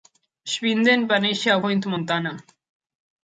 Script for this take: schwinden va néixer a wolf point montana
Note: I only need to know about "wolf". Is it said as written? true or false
false